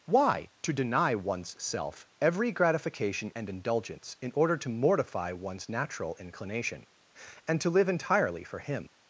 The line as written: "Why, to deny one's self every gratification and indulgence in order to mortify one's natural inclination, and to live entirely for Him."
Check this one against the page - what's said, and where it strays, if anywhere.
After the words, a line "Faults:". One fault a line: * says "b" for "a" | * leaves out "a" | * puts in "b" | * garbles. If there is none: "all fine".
"Why, to deny one's self every gratification and indulgence in order to mortify one's natural inclination, and to live entirely for Him."
Faults:
all fine